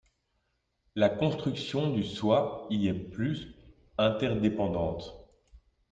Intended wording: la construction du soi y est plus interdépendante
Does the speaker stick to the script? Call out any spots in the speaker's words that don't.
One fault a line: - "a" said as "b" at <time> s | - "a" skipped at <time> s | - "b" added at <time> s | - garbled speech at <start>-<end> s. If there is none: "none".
none